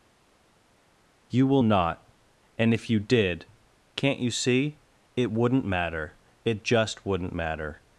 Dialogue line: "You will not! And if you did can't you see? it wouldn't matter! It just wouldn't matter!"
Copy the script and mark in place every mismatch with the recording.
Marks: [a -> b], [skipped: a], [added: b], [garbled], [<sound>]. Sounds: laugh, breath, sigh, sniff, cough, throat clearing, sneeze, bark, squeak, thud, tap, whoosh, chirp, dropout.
"You will not! And if you did can't you see? it wouldn't matter! It just wouldn't matter!"